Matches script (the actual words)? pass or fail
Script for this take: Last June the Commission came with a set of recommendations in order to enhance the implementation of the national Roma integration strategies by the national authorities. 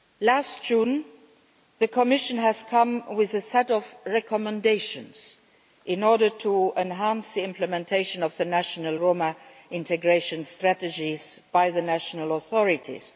pass